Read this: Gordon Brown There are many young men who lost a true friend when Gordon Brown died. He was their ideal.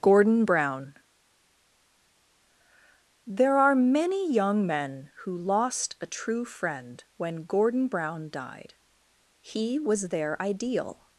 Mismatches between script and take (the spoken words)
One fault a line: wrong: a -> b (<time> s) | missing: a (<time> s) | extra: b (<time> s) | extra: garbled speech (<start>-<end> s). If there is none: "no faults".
no faults